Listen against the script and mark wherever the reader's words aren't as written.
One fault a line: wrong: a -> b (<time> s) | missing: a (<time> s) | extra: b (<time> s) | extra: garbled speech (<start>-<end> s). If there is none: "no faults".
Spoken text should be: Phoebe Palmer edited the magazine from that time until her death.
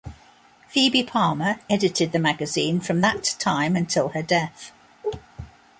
no faults